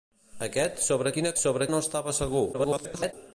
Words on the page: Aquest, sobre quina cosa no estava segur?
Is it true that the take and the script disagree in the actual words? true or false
true